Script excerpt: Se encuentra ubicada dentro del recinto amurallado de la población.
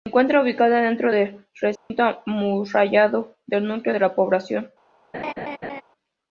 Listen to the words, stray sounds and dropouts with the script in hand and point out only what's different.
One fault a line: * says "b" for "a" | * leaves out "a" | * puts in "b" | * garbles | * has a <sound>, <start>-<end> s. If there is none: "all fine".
* has a dropout, 1.8-1.9 s
* puts in "del núcleo"
* has a laugh, 5.1-5.8 s